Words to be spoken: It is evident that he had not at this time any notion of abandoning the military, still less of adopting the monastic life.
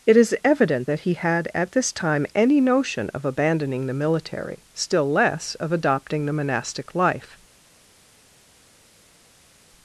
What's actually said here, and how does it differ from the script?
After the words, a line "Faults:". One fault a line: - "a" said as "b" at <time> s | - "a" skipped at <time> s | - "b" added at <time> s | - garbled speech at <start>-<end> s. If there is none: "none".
It is evident that he had at this time any notion of abandoning the military, still less of adopting the monastic life.
Faults:
- "not" skipped at 1.5 s